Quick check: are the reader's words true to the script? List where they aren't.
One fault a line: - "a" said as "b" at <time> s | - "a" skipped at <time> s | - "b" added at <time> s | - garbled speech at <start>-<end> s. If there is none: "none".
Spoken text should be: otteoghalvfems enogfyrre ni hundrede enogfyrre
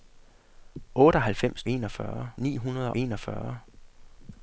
none